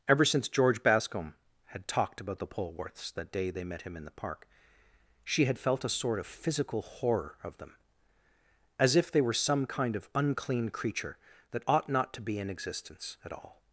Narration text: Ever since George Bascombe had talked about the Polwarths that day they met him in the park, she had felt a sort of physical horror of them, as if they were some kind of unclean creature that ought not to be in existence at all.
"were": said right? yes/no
yes